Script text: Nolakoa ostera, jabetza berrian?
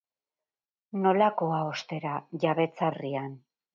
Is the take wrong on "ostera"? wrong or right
right